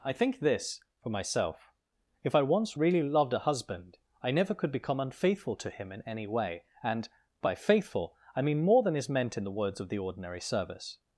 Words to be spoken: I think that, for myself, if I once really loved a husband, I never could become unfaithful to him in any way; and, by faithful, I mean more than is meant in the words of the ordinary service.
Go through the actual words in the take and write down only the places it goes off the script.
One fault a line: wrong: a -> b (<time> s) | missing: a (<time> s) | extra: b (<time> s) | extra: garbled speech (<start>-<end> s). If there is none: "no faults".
wrong: that -> this (0.4 s)